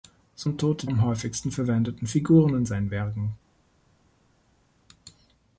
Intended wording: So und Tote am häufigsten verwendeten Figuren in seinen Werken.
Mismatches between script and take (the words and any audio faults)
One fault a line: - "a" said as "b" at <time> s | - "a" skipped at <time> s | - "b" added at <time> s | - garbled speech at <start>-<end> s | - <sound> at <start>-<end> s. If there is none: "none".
none